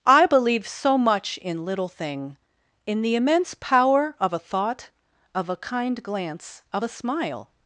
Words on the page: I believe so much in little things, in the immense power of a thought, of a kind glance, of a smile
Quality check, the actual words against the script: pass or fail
fail